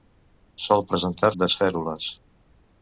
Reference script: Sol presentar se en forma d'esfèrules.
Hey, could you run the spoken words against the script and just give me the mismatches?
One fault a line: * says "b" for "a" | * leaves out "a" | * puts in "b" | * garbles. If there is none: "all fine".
* leaves out "se en forma"